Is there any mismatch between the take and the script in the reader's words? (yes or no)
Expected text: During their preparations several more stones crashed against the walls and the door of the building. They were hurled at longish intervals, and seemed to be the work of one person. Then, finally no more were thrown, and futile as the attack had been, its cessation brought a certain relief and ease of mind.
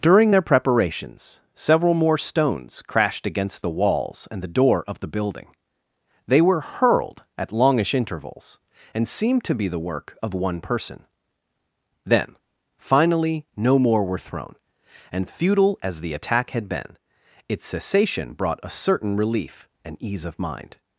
no